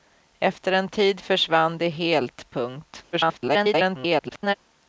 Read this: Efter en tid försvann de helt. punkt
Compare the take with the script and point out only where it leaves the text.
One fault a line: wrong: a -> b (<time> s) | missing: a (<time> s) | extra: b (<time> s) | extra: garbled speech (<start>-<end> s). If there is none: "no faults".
extra: garbled speech (3.1-4.5 s)